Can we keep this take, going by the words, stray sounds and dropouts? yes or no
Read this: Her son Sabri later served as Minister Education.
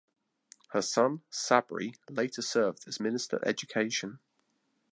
yes